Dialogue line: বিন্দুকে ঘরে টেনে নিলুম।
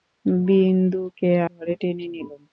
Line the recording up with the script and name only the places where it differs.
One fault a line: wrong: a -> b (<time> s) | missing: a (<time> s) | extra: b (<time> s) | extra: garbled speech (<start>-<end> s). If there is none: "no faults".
no faults